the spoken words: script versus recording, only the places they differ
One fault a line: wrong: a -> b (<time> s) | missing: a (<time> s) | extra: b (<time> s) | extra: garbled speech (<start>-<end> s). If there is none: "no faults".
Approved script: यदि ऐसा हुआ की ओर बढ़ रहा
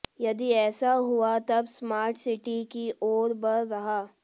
extra: तब स्मार्ट सिटी (1.5 s)